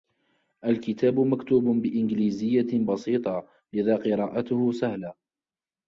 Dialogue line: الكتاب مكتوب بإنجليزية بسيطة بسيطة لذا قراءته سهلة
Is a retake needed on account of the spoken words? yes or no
yes